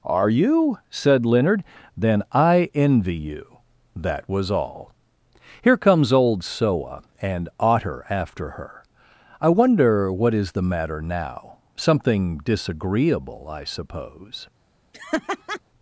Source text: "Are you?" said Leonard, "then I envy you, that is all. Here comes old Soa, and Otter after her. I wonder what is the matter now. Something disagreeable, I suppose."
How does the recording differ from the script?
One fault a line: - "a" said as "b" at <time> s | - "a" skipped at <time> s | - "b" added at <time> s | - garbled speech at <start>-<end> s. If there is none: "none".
- "is" said as "was" at 4.3 s